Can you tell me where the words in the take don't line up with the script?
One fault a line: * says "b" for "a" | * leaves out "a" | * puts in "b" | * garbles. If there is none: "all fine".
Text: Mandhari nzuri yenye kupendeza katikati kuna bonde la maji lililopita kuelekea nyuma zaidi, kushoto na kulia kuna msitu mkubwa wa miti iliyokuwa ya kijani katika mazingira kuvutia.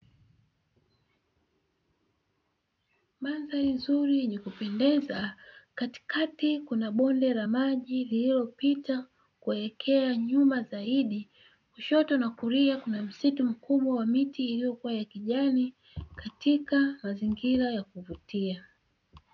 * puts in "ya"